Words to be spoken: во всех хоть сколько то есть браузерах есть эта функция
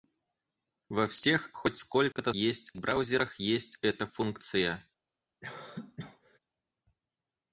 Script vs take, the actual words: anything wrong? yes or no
no